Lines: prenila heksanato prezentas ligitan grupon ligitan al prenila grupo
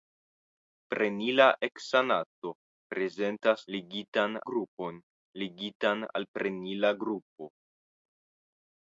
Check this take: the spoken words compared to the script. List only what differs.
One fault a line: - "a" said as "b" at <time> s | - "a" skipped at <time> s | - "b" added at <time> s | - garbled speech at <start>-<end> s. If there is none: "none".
none